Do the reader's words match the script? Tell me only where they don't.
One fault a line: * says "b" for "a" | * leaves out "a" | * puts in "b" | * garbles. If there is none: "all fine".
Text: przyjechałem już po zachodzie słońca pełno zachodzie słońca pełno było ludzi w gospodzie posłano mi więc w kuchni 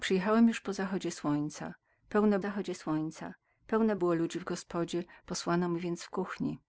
all fine